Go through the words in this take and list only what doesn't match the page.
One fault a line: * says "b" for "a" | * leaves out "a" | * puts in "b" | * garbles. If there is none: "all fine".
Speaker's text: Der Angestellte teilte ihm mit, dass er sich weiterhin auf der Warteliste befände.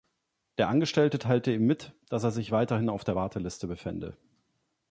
all fine